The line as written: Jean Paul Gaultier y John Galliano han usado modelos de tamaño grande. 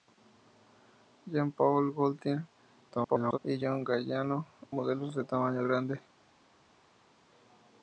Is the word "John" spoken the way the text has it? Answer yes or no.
yes